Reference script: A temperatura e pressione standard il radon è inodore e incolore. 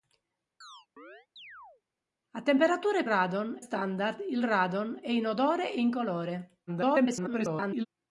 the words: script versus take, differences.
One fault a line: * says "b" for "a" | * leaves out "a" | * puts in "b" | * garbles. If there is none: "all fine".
* says "radon" for "pressione"
* garbles